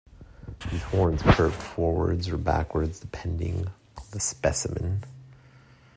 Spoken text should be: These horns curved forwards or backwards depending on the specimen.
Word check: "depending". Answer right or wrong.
right